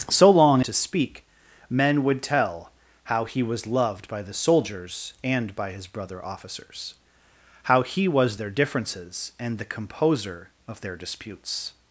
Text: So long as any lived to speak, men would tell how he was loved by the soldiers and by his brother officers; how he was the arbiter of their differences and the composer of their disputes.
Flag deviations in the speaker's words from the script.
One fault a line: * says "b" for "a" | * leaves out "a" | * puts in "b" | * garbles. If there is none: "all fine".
* leaves out "as any lived"
* leaves out "the arbiter of"